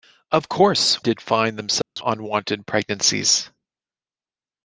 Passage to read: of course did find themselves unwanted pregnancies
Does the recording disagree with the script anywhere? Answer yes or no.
no